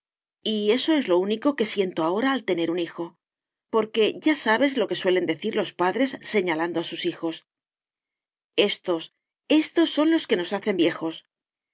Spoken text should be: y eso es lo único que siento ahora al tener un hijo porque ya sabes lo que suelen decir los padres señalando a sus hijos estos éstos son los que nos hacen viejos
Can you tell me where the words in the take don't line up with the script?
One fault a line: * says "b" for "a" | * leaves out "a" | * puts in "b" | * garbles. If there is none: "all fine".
all fine